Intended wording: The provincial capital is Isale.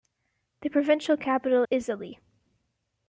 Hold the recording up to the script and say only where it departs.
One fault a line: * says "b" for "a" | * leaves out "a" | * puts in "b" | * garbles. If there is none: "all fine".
* leaves out "is"